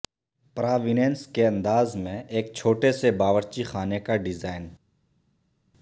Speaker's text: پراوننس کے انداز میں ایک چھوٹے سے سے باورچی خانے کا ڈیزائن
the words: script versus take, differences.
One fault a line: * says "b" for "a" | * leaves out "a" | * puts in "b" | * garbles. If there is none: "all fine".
* leaves out "سے"